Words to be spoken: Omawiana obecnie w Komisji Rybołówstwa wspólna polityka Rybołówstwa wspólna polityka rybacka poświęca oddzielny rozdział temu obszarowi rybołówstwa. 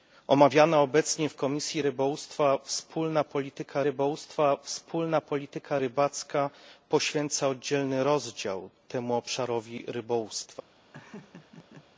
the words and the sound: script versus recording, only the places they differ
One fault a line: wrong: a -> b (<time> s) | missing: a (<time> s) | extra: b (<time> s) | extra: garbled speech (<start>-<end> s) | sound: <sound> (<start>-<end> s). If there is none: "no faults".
sound: laugh (10.9-11.9 s)